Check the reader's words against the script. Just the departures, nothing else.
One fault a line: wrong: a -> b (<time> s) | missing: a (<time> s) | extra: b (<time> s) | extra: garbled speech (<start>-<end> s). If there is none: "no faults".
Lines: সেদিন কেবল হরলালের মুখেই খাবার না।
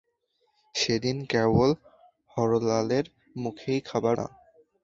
no faults